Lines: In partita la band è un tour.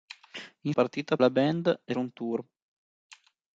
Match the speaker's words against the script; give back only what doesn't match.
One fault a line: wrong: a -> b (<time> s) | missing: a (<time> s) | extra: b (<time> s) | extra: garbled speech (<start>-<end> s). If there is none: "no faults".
no faults